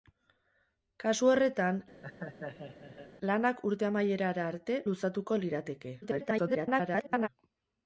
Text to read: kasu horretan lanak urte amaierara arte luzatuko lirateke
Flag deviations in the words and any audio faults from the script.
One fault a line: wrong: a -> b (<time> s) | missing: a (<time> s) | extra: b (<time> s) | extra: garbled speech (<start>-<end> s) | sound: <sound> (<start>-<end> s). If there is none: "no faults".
sound: laugh (2.0-3.1 s)
extra: garbled speech (6.0-7.3 s)